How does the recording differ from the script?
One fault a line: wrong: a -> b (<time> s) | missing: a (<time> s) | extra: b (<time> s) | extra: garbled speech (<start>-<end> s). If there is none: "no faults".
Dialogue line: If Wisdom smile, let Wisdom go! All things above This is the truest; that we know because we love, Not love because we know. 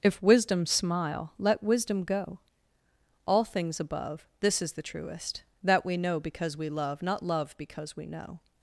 no faults